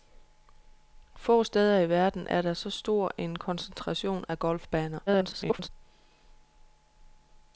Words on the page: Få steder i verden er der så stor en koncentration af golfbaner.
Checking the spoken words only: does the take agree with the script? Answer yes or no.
no